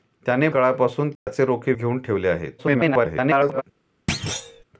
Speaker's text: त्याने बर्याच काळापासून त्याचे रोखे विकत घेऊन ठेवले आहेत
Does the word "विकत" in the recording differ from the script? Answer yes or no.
yes